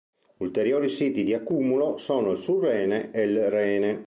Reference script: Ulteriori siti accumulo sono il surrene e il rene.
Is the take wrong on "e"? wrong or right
right